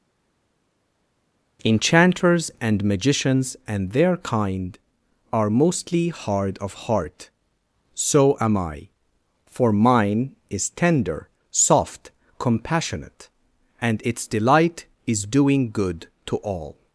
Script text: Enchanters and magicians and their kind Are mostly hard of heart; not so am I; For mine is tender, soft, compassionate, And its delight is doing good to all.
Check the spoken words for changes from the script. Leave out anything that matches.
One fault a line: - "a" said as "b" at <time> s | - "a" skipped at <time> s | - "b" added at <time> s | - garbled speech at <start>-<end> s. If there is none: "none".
- "not" skipped at 7.3 s